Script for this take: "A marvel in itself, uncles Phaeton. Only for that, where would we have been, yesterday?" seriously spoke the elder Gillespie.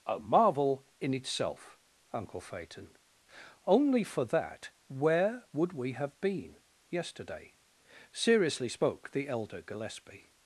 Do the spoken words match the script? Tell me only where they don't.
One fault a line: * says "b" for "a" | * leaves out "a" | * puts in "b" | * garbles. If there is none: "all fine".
* says "uncle" for "uncles"